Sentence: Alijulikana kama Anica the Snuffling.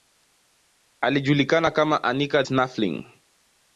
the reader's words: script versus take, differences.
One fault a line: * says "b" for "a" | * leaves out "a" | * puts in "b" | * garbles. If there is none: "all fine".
* leaves out "the"